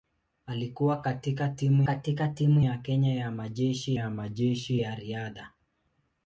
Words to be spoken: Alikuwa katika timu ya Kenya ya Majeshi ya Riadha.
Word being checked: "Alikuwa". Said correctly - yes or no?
yes